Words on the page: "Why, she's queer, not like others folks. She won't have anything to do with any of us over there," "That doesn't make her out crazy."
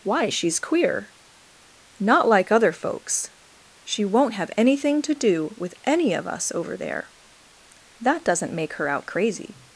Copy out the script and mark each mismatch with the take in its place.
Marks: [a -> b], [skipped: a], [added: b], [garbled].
"Why, she's queer, not like [others -> other] folks. She won't have anything to do with any of us over there," "That doesn't make her out crazy."